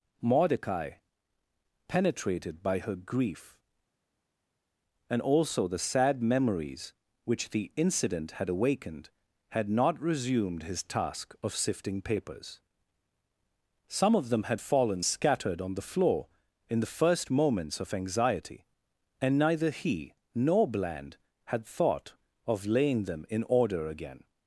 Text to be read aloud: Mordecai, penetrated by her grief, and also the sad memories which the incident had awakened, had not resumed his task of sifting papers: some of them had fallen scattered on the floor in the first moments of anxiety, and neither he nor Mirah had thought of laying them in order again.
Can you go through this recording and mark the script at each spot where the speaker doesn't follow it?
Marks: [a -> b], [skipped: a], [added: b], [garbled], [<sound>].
Mordecai, penetrated by her grief, and also the sad memories which the incident had awakened, had not resumed his task of sifting papers: some of them had fallen scattered on the floor in the first moments of anxiety, and neither he nor [Mirah -> Bland] had thought of laying them in order again.